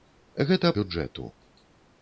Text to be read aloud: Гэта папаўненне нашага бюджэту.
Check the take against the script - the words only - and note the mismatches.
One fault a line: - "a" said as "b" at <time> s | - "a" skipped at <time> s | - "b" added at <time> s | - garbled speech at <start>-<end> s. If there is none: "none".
- "папаўненне нашага" skipped at 0.7 s